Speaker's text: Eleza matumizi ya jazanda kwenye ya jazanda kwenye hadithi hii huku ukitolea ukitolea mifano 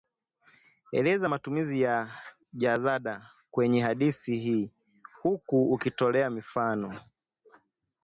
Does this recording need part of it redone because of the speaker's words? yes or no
yes